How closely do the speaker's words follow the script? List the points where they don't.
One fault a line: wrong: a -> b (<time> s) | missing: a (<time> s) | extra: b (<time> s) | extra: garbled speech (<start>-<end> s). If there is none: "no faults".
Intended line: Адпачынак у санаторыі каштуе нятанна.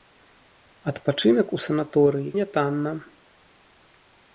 missing: каштуе (2.3 s)